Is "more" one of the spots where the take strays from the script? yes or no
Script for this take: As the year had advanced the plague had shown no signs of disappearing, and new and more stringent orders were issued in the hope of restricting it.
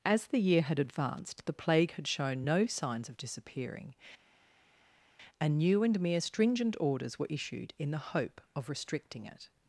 yes